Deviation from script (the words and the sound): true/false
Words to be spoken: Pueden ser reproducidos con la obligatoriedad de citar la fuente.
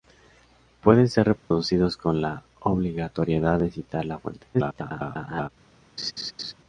true